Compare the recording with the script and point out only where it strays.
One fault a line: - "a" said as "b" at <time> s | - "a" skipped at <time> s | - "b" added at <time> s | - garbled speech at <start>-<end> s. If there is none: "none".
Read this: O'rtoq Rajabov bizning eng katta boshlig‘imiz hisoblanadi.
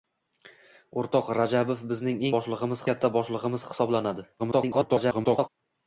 - "eng" said as "boshlig‘imiz" at 2.4 s
- garbled speech at 4.4-5.5 s